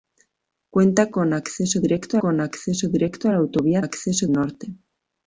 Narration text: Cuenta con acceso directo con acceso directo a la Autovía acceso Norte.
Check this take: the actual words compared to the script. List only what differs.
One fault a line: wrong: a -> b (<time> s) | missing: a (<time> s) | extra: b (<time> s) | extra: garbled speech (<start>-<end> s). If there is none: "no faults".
no faults